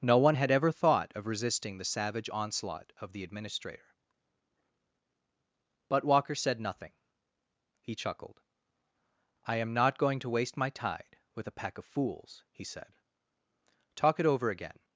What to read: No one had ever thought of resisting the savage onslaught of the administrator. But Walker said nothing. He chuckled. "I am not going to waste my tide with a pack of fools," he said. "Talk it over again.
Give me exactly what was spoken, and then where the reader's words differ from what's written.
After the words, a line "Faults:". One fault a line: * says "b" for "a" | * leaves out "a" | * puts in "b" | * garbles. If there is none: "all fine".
No one had ever thought of resisting the savage onslaught of the administrator. But Walker said nothing. He chuckled. "I am not going to waste my tide with a pack of fools," he said. "Talk it over again.
Faults:
all fine